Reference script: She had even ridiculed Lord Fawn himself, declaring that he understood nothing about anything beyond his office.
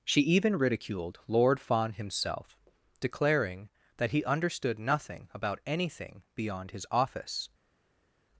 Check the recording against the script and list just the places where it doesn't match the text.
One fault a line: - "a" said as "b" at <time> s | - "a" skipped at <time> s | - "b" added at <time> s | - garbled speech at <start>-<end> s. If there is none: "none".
- "had" skipped at 0.2 s